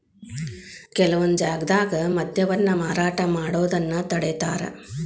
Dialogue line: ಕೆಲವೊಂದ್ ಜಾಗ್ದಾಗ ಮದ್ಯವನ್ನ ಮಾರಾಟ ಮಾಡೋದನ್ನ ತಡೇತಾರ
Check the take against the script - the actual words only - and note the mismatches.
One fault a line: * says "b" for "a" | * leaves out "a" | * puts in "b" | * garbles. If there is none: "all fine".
all fine